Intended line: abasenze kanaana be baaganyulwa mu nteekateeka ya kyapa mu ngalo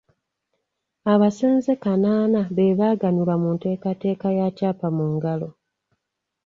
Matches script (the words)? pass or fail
pass